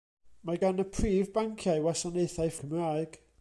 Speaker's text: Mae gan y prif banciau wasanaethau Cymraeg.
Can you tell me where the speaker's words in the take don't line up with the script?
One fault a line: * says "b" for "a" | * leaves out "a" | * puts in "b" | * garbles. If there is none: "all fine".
all fine